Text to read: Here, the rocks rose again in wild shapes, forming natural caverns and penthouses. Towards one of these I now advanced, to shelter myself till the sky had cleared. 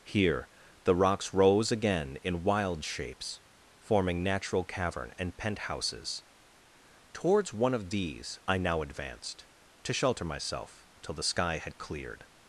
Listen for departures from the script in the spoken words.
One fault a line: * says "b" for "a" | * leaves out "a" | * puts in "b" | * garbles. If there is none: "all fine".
* says "cavern" for "caverns"